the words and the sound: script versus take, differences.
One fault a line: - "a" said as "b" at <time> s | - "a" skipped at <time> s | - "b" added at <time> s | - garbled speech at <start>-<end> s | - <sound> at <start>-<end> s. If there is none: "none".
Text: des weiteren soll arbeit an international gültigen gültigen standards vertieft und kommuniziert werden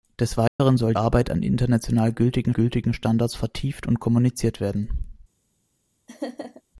- dropout at 0.5-0.6 s
- laugh at 6.1-6.6 s